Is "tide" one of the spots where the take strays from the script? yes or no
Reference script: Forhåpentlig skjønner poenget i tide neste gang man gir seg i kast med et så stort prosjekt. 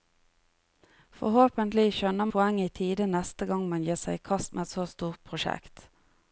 no